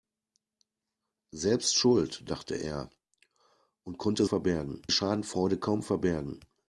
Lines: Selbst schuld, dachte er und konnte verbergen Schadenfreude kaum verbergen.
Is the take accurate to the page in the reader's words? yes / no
yes